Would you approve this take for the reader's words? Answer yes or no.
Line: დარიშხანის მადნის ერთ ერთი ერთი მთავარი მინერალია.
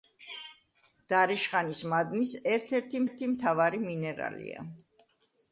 yes